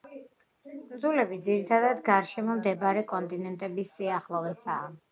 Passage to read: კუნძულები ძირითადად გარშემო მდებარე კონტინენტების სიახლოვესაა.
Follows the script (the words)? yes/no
yes